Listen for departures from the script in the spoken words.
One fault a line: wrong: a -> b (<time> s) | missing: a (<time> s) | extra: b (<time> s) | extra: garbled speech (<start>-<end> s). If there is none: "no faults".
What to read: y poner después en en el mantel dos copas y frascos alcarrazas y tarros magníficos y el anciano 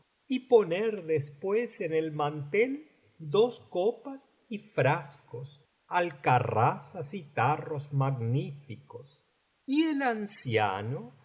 missing: en (1.9 s)